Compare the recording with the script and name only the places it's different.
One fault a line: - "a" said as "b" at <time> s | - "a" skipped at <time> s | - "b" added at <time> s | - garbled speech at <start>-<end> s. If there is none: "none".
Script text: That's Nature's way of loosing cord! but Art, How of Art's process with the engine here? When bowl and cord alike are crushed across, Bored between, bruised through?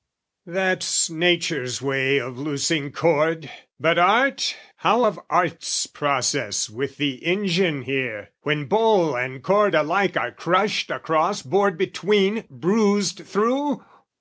none